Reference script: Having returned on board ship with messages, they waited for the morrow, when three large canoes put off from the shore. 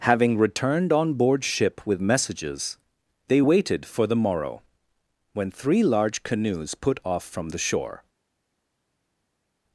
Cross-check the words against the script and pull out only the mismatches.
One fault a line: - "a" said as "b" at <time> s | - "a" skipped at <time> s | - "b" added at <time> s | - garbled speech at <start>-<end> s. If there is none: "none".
none